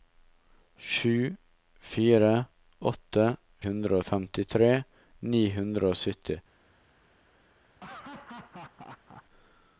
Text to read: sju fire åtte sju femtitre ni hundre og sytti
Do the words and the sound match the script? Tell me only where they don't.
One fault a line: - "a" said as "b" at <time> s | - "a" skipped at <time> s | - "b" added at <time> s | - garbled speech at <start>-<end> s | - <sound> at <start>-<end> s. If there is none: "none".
- "sju" said as "hundre" at 3.7 s
- laugh at 7.8-9.2 s